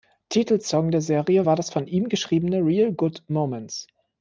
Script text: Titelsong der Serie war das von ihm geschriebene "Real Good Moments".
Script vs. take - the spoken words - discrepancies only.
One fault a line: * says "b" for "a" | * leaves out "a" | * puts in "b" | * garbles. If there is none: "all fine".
all fine